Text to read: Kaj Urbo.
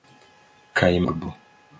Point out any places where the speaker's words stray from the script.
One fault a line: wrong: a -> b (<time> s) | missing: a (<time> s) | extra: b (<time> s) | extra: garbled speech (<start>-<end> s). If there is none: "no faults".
no faults